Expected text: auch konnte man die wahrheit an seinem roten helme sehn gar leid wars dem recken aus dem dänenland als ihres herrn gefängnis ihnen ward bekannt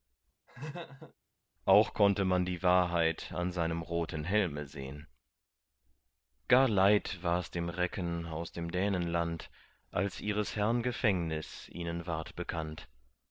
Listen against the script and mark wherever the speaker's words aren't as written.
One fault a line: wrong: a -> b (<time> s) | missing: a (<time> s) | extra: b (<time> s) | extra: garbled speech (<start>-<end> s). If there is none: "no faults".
no faults